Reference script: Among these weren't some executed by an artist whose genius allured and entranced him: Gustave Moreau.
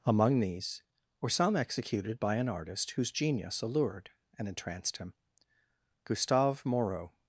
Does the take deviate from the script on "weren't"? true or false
true